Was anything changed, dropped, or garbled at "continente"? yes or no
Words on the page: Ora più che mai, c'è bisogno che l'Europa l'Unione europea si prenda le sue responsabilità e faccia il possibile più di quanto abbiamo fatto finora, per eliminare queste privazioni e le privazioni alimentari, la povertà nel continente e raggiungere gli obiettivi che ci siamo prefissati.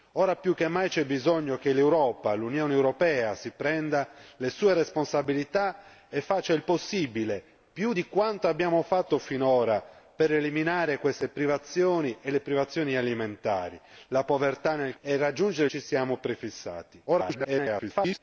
yes